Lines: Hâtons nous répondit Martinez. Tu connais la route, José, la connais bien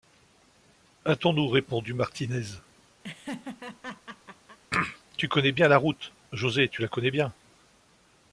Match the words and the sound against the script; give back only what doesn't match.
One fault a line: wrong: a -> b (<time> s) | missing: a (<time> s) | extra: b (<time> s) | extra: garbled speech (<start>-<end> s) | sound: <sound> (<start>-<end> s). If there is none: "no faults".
sound: laugh (3.0-4.6 s)
extra: bien (5.5 s)
extra: tu (6.7 s)